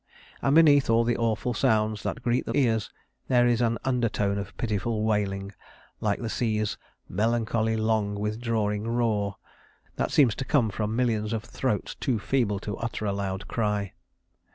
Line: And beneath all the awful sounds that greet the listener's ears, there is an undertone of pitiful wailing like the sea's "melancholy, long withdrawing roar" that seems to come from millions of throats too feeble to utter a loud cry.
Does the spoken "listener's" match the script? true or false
false